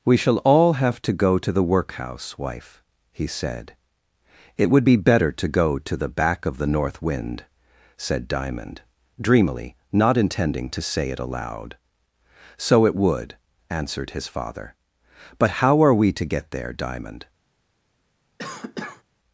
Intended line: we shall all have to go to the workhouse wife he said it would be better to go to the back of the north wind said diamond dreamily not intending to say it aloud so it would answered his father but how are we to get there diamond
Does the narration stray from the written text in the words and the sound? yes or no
yes